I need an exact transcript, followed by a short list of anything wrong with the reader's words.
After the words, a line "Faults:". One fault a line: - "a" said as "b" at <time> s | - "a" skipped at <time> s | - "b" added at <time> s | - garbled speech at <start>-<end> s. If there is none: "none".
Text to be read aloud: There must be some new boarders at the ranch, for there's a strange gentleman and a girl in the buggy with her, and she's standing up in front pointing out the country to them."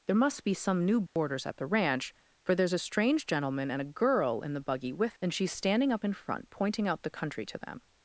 There must be some new boarders at the ranch, for there's a strange gentleman and a girl in the buggy with and she's standing up in front pointing out the country to them."
Faults:
- "her" skipped at 5.2 s